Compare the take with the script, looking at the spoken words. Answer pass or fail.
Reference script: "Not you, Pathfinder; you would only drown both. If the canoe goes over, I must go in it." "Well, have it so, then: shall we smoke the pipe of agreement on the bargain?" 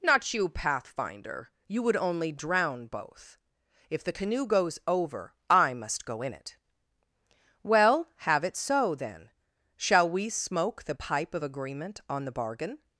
pass